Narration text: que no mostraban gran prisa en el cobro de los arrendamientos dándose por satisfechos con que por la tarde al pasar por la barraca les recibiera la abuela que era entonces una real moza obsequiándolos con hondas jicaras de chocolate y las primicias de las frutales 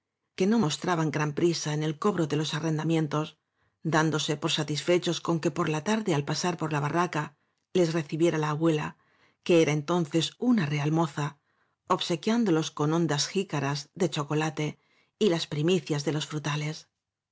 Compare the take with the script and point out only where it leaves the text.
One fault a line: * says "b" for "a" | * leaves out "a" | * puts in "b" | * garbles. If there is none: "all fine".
* says "los" for "las"